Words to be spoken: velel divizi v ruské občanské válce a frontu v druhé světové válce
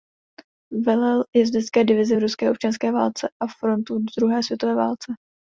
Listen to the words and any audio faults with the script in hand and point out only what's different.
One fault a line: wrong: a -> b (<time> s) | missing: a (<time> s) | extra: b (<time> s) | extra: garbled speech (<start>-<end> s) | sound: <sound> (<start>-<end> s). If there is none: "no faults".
extra: jezdecké (1.4 s)